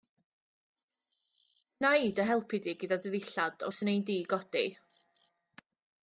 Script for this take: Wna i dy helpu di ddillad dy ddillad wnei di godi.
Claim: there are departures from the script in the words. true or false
true